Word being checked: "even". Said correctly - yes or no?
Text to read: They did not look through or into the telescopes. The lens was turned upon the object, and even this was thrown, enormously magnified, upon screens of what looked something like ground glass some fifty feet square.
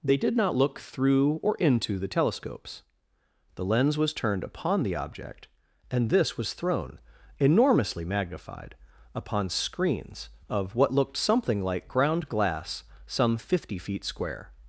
no